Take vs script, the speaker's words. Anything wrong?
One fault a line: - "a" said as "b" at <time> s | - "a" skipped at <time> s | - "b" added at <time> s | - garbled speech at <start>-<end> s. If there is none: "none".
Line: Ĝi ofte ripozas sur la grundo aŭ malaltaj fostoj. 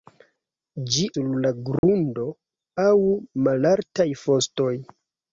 - "ofte ripozas" skipped at 1.0 s